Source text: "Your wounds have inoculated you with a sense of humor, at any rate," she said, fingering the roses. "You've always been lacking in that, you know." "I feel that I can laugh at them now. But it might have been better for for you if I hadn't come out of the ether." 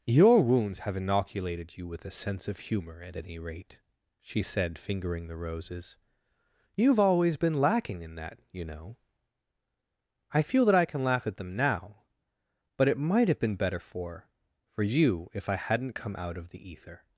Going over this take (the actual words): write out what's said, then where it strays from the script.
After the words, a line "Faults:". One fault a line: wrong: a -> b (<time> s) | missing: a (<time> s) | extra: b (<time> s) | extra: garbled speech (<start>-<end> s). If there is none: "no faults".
"Your wounds have inoculated you with a sense of humor, at any rate," she said, fingering the roses. "You've always been lacking in that, you know." "I feel that I can laugh at them now. But it might have been better for for you if I hadn't come out of the ether."
Faults:
no faults